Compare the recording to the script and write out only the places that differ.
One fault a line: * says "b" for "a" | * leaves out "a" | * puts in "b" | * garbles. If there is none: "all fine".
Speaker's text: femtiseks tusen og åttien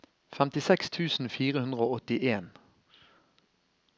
* puts in "fire hundre"